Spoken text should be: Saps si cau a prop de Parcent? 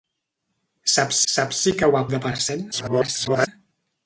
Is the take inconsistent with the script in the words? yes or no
yes